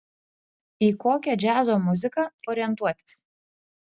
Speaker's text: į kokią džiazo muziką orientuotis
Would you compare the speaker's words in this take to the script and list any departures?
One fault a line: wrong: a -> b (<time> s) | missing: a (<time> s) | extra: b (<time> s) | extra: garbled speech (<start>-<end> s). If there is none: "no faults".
no faults